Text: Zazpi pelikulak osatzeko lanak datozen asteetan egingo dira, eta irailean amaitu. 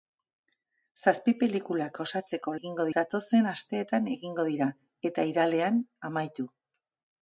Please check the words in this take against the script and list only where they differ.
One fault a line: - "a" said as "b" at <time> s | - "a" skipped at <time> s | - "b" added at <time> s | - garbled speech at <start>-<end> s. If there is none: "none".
- "lanak" said as "egingo" at 2.6 s